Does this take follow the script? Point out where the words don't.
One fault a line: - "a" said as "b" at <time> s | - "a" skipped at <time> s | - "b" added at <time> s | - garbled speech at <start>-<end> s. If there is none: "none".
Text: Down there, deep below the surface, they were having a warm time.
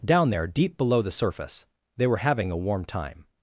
none